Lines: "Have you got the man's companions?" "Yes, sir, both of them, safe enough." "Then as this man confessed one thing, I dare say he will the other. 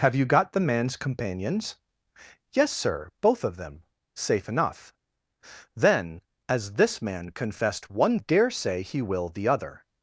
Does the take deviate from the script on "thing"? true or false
true